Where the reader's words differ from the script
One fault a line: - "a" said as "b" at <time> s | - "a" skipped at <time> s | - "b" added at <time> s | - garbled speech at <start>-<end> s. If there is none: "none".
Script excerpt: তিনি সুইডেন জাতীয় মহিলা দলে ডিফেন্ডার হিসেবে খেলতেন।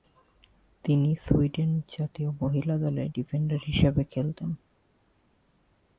none